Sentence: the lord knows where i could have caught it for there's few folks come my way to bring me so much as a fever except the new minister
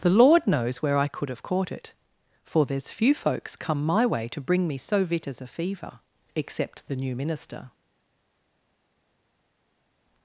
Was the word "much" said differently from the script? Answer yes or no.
yes